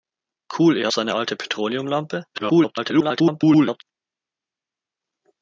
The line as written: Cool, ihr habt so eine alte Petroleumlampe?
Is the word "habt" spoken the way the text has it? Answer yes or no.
no